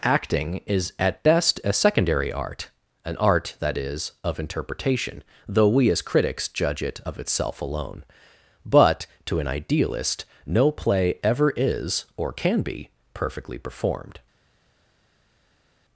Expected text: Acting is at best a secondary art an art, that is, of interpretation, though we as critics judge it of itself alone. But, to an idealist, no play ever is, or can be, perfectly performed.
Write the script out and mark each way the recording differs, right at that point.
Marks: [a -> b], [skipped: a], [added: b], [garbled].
Acting is at best a secondary art an art, that is, of interpretation, though we as critics judge it of itself alone. But, to an idealist, no play ever is, or can be, perfectly performed.